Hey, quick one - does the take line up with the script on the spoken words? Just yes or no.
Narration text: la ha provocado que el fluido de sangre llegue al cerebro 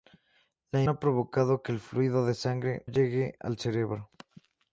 yes